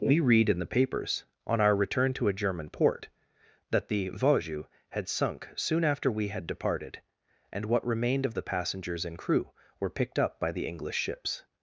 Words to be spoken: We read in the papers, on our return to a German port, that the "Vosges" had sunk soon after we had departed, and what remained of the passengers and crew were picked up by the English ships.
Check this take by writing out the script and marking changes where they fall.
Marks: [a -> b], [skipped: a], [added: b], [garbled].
We read in the papers, on our return to a German port, that the "Vosges" had sunk soon after we had departed, and what remained of the passengers and crew were picked up by the English ships.